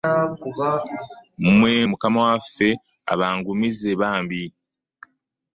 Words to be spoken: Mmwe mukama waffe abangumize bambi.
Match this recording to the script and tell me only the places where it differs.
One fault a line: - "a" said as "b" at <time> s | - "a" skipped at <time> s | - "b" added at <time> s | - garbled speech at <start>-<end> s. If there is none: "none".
none